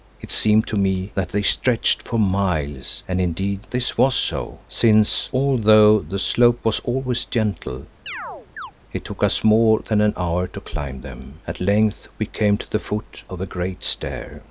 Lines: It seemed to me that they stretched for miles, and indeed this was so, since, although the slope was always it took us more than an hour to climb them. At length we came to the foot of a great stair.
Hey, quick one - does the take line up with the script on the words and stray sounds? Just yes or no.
no